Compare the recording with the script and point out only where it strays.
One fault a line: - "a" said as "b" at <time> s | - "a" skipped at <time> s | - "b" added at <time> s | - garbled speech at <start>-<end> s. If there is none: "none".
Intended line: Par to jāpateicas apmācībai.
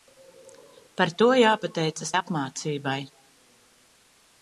none